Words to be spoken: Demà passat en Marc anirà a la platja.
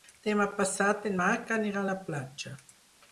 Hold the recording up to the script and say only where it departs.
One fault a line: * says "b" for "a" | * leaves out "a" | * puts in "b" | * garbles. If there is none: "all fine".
all fine